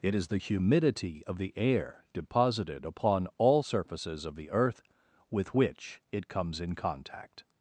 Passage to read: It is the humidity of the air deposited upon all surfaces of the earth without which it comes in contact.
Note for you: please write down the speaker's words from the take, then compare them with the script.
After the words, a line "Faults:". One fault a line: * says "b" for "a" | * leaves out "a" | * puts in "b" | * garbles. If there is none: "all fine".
It is the humidity of the air deposited upon all surfaces of the earth with which it comes in contact.
Faults:
* says "with" for "without"